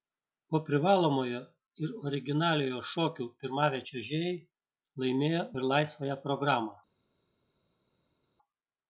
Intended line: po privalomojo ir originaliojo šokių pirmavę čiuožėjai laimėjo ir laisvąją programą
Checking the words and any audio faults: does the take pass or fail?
pass